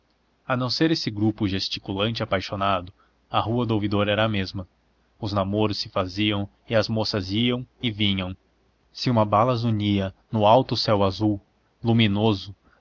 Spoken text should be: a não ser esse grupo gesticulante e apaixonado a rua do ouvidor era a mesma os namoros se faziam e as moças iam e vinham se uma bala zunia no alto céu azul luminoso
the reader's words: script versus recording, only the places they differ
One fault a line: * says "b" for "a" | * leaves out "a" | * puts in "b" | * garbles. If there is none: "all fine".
all fine